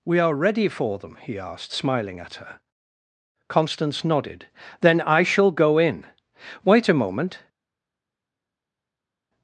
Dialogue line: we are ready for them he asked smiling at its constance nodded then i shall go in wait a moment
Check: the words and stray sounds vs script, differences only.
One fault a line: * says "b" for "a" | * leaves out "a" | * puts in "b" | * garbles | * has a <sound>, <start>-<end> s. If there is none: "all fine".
* says "her" for "its"